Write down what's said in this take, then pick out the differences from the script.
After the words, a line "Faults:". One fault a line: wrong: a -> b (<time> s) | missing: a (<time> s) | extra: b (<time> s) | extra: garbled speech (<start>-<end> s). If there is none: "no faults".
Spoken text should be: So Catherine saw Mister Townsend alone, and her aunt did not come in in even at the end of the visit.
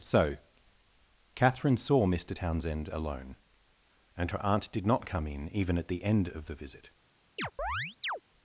So Catherine saw Mister Townsend alone, and her aunt did not come in even at the end of the visit.
Faults:
missing: in (5.5 s)